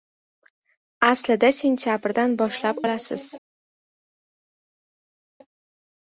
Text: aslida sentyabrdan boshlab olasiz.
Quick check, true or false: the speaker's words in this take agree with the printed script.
true